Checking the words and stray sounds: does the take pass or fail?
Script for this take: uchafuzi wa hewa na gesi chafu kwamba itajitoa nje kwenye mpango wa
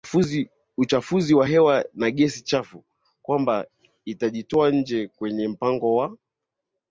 pass